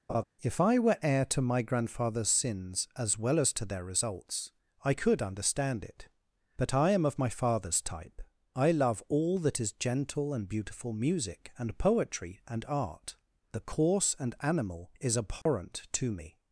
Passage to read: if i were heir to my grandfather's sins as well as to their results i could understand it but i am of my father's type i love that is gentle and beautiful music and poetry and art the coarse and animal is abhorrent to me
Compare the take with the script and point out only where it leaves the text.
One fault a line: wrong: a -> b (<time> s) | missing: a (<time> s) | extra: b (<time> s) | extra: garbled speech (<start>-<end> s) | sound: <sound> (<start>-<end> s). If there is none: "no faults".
sound: laugh (0.1-0.2 s)
extra: all (9.1 s)
sound: dropout (15.4-15.5 s)